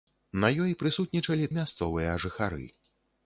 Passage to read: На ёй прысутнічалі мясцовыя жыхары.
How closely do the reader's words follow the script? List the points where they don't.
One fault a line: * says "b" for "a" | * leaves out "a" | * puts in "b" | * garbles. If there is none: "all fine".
all fine